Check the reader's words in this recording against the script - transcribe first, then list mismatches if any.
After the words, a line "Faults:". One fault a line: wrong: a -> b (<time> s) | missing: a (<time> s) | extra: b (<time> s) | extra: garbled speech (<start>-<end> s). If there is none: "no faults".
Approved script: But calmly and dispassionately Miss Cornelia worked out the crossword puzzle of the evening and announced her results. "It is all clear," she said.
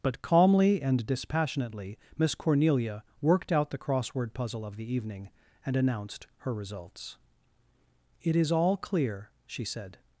But calmly and dispassionately Miss Cornelia worked out the crossword puzzle of the evening and announced her results. "It is all clear," she said.
Faults:
no faults